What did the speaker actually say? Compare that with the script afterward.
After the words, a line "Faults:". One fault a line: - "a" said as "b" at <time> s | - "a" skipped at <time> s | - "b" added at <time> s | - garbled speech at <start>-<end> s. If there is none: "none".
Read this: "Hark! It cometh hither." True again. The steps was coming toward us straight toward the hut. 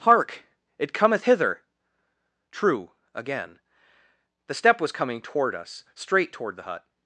"Hark! It cometh hither." True again. The step was coming toward us straight toward the hut.
Faults:
- "steps" said as "step" at 4.5 s